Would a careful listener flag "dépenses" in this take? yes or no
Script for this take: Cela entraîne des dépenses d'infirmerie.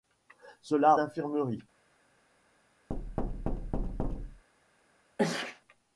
yes